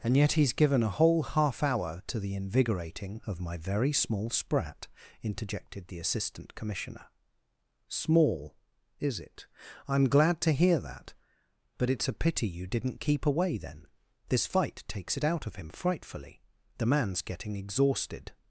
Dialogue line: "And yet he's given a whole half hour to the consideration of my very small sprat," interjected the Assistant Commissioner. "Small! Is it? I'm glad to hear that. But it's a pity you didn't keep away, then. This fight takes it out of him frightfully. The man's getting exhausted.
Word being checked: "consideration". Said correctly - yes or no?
no